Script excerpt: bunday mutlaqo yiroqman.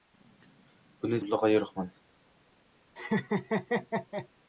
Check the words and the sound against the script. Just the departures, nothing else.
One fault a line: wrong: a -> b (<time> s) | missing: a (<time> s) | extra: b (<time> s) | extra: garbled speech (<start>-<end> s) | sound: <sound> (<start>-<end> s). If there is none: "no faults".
sound: laugh (3.0-4.3 s)